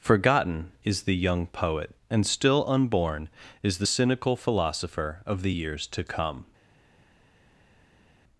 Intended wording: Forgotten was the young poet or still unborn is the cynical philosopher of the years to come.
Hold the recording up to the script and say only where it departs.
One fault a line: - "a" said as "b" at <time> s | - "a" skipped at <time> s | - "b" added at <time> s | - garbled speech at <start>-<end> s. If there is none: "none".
- "was" said as "is" at 0.8 s
- "or" said as "and" at 2.1 s